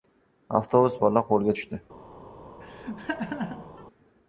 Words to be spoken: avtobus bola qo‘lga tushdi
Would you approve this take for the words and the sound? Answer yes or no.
no